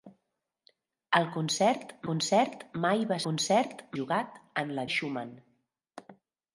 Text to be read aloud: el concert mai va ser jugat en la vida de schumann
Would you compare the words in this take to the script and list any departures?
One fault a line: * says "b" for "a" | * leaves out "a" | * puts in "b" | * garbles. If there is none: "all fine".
* puts in "concert"
* says "concert" for "ser"
* leaves out "vida"